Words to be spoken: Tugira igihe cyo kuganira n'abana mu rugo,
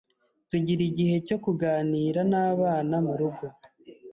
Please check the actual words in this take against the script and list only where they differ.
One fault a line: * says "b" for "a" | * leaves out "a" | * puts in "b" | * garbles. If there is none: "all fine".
all fine